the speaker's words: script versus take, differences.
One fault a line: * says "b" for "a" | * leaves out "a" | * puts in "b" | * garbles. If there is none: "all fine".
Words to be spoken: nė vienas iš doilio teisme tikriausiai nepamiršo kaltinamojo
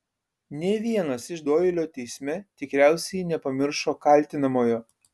all fine